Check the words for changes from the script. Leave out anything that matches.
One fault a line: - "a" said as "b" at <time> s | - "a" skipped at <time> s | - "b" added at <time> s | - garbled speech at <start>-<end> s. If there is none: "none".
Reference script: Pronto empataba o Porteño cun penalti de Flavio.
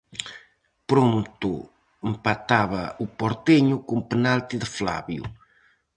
none